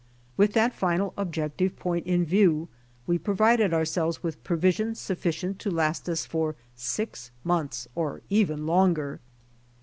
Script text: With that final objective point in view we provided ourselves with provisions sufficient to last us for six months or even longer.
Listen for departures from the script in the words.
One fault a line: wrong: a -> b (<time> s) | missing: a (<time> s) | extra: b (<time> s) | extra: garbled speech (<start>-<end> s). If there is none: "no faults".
no faults